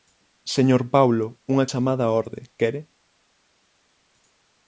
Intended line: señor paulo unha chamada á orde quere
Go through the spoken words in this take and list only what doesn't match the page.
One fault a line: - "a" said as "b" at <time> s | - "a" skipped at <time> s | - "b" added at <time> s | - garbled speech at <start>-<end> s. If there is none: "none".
none